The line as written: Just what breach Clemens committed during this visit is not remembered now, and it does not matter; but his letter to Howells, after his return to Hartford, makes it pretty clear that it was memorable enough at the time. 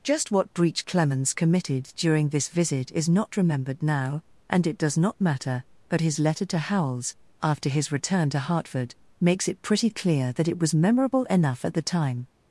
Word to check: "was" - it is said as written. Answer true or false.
true